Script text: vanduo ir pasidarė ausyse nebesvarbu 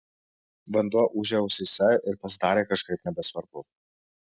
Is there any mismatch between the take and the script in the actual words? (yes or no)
yes